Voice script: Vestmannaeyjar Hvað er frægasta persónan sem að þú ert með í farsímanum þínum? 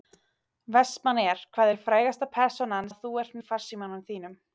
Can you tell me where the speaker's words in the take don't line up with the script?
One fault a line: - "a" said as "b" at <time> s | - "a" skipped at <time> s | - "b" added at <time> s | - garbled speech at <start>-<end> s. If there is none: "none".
- "sem" skipped at 2.9 s
- "með" skipped at 3.4 s